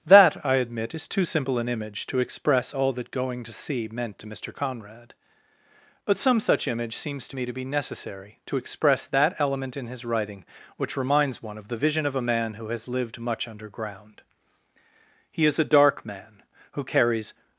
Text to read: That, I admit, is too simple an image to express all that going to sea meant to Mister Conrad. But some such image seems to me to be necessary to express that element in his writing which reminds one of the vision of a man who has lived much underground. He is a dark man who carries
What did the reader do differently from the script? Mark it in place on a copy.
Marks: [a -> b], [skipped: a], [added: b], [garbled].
That, I admit, is too simple an image to express all that going to sea meant to Mister Conrad. But some such image seems to me to be necessary to express that element in his writing which reminds one of the vision of a man who has lived much underground. He is a dark man who carries